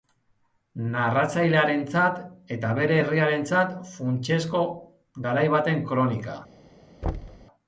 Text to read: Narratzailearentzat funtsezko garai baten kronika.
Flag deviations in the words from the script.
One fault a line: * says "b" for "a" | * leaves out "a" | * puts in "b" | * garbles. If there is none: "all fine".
* puts in "eta bere herriarentzat"